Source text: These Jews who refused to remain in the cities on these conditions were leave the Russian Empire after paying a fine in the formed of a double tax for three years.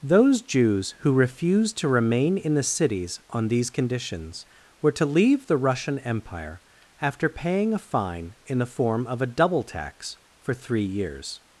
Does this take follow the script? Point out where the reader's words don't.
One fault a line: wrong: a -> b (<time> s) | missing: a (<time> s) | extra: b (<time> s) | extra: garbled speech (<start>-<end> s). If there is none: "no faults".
wrong: These -> Those (0.0 s)
extra: to (4.9 s)
wrong: formed -> form (8.7 s)